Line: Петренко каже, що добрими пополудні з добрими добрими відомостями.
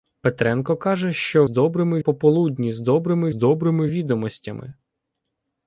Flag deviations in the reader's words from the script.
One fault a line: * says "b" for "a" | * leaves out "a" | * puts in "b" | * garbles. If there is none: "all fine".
all fine